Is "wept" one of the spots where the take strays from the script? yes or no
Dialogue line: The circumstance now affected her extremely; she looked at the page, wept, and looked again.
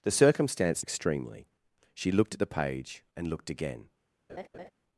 yes